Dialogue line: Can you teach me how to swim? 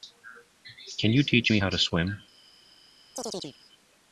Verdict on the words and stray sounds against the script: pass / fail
fail